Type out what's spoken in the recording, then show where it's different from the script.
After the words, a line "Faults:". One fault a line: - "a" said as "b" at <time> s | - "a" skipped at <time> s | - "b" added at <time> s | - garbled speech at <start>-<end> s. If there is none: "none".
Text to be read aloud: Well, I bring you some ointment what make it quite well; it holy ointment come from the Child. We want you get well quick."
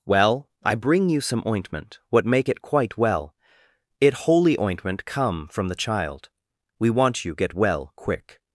Well, I bring you some ointment what make it quite well; it holy ointment come from the Child. We want you get well quick."
Faults:
none